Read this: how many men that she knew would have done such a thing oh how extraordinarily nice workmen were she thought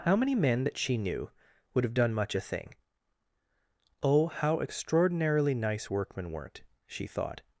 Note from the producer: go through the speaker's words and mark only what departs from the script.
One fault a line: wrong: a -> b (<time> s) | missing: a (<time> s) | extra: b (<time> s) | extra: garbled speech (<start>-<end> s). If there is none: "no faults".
wrong: such -> much (2.1 s)
wrong: were -> weren't (6.3 s)